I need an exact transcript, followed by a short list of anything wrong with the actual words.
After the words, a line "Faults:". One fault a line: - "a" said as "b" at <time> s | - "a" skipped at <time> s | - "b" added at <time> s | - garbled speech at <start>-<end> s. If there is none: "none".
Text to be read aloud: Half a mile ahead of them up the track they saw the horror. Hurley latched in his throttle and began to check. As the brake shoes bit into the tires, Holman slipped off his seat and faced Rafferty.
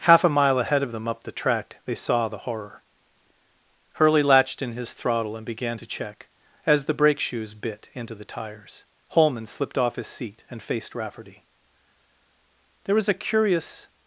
Half a mile ahead of them up the track they saw the horror. Hurley latched in his throttle and began to check. As the brake shoes bit into the tires, Holman slipped off his seat and faced Rafferty. There was a curious
Faults:
- "There was a curious" added at 12.9 s